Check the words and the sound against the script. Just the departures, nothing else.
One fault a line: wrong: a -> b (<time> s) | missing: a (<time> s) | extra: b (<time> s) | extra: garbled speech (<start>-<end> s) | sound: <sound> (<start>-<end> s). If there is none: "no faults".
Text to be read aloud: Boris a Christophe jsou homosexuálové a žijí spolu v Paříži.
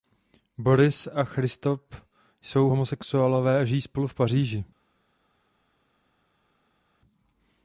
no faults